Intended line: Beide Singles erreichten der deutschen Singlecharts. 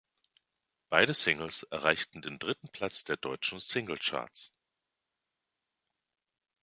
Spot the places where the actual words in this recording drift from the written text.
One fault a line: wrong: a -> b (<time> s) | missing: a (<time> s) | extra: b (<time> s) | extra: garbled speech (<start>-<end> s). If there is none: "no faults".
extra: den dritten Platz (2.2 s)